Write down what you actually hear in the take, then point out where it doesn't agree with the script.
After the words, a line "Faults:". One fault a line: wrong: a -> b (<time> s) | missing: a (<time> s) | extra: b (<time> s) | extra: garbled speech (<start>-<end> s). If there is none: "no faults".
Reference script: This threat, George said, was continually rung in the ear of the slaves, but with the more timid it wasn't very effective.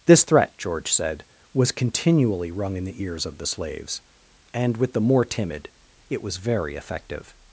This threat, George said, was continually rung in the ears of the slaves, and with the more timid it was very effective.
Faults:
wrong: ear -> ears (3.0 s)
wrong: but -> and (4.5 s)
wrong: wasn't -> was (6.2 s)